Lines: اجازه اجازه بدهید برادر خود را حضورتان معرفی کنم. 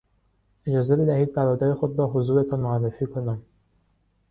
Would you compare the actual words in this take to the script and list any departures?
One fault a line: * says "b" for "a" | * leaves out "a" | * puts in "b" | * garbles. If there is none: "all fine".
* leaves out "اجازه"